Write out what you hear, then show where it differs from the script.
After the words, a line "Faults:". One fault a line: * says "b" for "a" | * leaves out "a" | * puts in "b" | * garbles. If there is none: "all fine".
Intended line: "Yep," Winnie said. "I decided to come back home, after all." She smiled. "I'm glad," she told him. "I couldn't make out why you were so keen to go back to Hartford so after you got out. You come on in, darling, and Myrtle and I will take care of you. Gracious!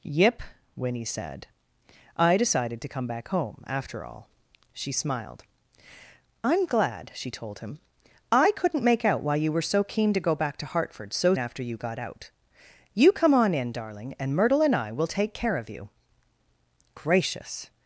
"Yep," Winnie said. "I decided to come back home, after all." She smiled. "I'm glad," she told him. "I couldn't make out why you were so keen to go back to Hartford so after you got out. You come on in, darling, and Myrtle and I will take care of you. Gracious!
Faults:
all fine